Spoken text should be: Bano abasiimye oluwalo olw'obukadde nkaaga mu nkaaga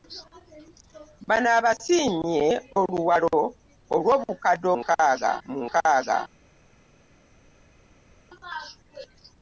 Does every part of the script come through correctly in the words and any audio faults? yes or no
yes